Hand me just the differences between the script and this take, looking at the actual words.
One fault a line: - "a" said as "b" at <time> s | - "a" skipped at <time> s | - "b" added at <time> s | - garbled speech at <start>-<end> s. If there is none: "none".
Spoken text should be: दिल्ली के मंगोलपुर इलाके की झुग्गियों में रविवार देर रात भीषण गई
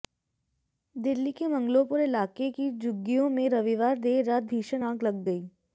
- "आग लग" added at 4.8 s